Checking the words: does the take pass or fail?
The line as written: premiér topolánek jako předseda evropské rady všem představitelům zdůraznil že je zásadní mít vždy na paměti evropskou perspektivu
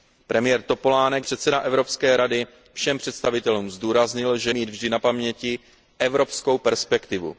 fail